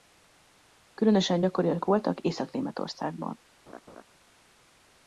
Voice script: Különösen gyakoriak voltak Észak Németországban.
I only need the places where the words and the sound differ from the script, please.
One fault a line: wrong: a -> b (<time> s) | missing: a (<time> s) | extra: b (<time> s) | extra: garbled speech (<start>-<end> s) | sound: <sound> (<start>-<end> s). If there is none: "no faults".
sound: laugh (3.7-4.0 s)